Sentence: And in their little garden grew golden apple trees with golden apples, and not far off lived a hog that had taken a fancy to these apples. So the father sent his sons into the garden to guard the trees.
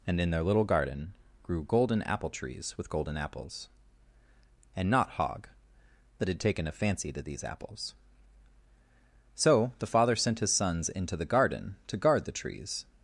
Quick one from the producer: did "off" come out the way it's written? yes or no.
no